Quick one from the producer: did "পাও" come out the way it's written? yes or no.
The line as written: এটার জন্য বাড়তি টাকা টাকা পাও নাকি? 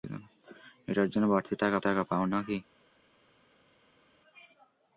yes